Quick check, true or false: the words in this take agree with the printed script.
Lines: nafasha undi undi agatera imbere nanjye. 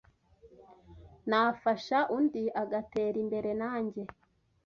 false